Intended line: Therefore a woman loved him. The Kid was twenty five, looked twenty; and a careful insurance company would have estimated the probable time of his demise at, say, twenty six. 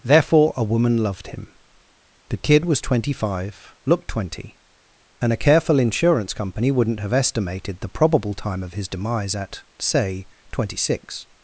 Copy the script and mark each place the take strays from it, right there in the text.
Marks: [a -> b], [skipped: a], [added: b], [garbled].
Therefore a woman loved him. The Kid was twenty five, looked twenty; and a careful insurance company [would -> wouldn't] have estimated the probable time of his demise at, say, twenty six.